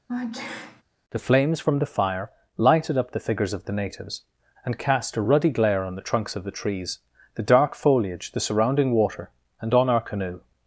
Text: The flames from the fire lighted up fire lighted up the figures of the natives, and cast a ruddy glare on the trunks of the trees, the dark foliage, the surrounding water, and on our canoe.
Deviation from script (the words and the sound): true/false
true